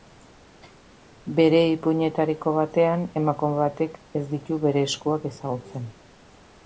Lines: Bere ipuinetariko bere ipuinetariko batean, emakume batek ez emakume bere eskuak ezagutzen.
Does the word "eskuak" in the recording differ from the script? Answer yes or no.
no